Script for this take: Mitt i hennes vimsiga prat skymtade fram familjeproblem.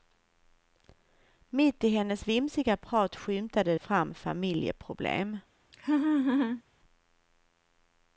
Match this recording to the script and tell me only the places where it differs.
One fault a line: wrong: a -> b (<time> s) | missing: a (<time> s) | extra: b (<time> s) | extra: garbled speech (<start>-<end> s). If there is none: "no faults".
no faults